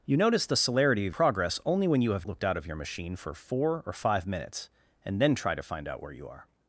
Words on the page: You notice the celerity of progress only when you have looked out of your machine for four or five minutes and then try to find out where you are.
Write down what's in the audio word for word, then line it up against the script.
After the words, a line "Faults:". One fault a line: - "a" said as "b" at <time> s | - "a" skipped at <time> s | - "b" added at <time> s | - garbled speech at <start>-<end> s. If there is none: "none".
You notice the celerity of progress only when you have looked out of your machine for four or five minutes and then try to find out where you are.
Faults:
none